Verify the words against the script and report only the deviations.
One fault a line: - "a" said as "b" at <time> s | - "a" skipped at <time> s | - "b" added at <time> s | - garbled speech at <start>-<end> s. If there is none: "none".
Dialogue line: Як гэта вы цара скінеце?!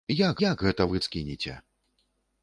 - "як" added at 0.4 s
- "цара" skipped at 1.0 s